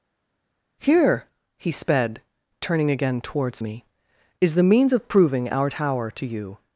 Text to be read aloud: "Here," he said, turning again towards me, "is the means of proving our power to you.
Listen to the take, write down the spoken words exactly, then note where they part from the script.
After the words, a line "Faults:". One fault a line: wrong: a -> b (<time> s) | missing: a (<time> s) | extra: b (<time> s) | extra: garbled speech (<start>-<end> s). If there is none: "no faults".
"Here," he sped, turning again towards me, "is the means of proving our tower to you.
Faults:
wrong: said -> sped (1.7 s)
wrong: power -> tower (5.7 s)